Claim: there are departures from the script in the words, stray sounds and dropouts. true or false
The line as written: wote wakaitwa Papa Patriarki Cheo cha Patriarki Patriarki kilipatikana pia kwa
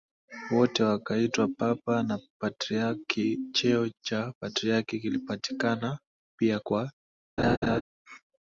true